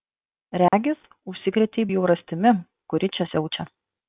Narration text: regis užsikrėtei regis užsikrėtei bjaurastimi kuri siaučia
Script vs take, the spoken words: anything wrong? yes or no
yes